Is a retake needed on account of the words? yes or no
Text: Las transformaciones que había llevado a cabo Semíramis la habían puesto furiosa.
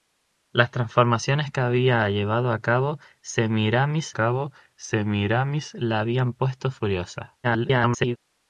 yes